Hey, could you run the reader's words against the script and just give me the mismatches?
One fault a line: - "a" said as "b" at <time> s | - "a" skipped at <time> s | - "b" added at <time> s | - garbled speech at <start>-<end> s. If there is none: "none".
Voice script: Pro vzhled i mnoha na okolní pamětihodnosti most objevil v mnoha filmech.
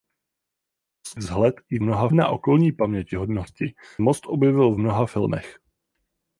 none